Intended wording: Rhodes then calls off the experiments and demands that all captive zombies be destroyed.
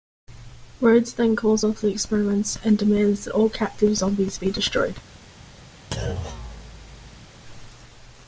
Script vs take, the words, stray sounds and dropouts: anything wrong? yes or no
yes